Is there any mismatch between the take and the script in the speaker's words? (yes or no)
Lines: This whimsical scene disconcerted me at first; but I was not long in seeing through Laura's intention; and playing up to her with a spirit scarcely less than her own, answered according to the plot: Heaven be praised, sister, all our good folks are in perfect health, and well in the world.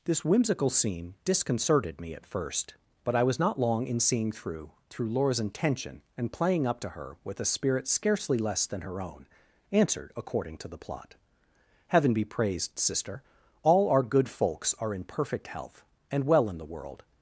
yes